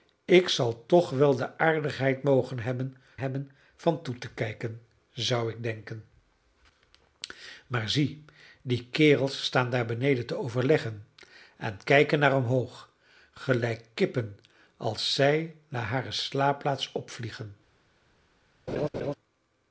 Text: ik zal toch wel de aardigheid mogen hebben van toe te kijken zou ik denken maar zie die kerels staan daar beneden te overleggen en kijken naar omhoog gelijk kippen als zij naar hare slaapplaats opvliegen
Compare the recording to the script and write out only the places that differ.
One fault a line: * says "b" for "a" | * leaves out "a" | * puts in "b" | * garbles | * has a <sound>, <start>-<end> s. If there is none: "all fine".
* puts in "hebben"
* has a laugh, 18.7-19.1 s